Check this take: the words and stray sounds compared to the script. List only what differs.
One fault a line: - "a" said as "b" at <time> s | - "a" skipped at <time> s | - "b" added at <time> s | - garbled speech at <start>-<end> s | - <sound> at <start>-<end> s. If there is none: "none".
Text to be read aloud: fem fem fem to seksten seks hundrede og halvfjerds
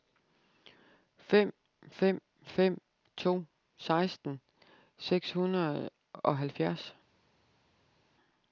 none